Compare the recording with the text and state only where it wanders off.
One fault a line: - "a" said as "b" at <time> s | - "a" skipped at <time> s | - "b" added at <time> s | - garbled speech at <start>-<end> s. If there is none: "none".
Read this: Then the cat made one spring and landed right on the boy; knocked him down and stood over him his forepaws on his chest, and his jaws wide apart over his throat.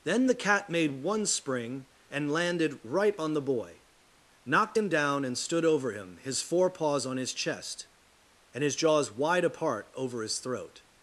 none